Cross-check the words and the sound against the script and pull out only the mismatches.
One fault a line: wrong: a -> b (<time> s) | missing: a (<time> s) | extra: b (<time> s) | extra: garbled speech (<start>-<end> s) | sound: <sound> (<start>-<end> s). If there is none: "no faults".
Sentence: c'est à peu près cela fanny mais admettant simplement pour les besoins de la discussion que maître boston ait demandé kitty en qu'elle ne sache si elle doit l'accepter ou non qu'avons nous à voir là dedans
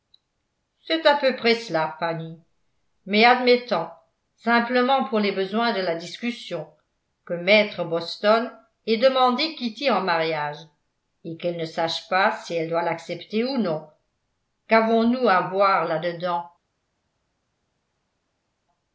extra: mariage et (10.0 s)
extra: pas (12.1 s)